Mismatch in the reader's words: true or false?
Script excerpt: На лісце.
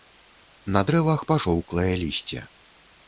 true